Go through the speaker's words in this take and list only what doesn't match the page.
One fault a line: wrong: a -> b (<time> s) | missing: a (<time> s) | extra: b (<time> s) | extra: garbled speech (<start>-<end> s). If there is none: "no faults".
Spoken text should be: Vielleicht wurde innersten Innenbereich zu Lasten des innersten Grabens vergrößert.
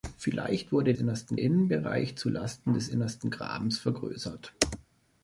no faults